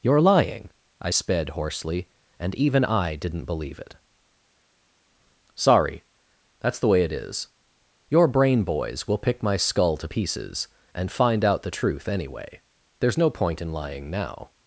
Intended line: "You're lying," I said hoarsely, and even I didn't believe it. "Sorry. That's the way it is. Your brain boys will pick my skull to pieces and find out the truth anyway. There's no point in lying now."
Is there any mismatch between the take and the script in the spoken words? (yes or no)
yes